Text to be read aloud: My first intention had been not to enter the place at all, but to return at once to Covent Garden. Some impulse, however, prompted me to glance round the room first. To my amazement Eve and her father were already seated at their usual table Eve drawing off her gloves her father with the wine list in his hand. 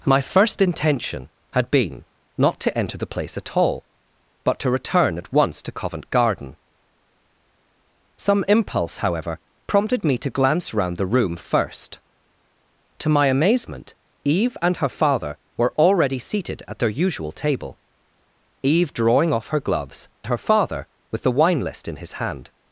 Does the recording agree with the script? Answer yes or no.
yes